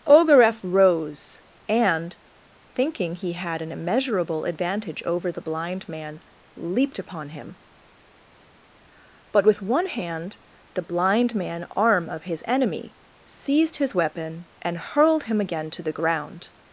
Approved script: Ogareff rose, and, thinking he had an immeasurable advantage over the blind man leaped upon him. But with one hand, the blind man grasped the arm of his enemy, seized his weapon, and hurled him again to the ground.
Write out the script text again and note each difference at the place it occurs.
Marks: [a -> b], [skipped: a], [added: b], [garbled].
Ogareff rose, and, thinking he had an immeasurable advantage over the blind man leaped upon him. But with one hand, the blind man [skipped: grasped the] arm of his enemy, seized his weapon, and hurled him again to the ground.